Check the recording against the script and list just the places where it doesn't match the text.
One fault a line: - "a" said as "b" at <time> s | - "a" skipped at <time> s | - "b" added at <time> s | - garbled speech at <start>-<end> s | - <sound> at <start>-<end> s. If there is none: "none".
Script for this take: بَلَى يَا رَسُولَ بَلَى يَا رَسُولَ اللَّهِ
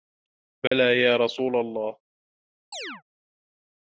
- dropout at 0.7-0.7 s
- "بَلَى يَا رَسُولَ" skipped at 1.6 s
- chirp at 2.7-3.0 s